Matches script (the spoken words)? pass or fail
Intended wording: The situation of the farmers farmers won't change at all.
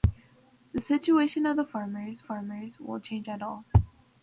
pass